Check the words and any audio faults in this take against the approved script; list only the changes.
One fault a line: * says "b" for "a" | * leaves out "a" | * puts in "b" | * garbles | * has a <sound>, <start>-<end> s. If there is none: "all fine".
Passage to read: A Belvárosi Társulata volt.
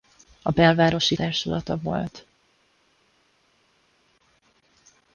all fine